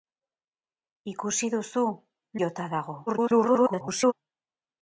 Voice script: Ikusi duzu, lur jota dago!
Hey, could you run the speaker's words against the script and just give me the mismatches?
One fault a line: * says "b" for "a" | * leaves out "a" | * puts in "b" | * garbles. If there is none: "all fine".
* leaves out "lur"
* garbles